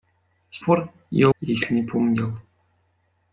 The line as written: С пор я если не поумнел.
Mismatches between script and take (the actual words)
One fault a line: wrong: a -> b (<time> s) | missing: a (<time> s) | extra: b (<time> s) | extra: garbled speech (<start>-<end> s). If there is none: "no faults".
no faults